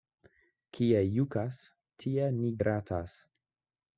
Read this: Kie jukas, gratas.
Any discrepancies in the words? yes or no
yes